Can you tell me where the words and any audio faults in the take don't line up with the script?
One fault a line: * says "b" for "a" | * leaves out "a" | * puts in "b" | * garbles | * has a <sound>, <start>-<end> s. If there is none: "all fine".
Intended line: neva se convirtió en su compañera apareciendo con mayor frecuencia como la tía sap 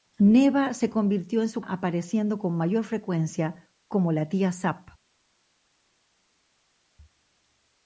* leaves out "compañera"